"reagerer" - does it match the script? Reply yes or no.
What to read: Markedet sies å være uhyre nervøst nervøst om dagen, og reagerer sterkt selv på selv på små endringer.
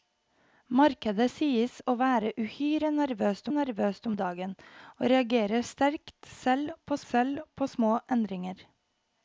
yes